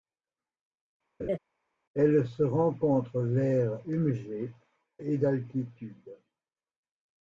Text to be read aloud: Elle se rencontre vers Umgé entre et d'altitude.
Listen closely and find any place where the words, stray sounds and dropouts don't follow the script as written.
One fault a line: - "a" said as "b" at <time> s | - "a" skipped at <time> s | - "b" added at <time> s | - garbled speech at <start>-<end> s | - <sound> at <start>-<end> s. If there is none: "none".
- laugh at 1.2-1.4 s
- "entre" skipped at 4.5 s